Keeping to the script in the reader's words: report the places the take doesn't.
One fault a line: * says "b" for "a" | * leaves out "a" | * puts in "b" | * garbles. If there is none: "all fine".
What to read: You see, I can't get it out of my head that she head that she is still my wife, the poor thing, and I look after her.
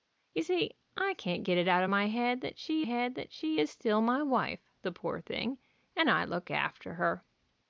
all fine